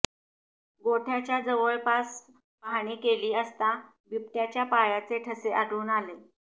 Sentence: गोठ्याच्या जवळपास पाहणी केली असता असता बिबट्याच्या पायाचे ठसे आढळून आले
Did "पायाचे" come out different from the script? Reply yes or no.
no